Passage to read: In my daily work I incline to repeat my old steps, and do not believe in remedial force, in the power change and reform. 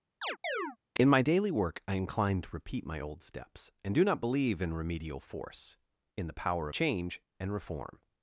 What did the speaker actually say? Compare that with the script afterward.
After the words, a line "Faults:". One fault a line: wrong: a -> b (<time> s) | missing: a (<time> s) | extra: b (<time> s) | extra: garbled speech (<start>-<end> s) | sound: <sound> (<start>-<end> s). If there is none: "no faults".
In my daily work I incline to repeat my old steps, and do not believe in remedial force, in the power change and reform.
Faults:
sound: chirp (0.2-0.8 s)